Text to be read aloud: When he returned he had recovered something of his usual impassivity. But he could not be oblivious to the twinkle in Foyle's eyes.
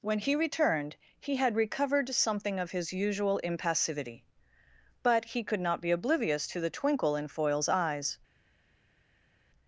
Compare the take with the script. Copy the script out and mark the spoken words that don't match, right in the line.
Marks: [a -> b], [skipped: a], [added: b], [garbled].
When he returned he had recovered something of his usual impassivity. But he could not be oblivious to the twinkle in Foyle's eyes.